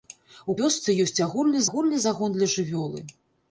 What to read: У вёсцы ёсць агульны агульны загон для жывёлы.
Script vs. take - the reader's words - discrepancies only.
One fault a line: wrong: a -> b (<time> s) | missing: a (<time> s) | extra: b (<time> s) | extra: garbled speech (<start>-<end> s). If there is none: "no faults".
no faults